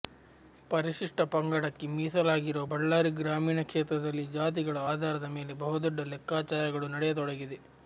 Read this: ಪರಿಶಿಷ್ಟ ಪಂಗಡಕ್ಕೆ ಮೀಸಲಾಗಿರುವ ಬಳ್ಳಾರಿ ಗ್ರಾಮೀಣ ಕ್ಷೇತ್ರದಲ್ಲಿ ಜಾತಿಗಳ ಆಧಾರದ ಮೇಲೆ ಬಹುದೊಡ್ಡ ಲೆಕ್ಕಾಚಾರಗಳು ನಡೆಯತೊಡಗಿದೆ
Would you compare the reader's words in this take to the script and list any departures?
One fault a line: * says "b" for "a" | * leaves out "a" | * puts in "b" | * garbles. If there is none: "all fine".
all fine